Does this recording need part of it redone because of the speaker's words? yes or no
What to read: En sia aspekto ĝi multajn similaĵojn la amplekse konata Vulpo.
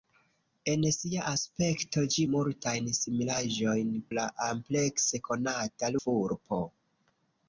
no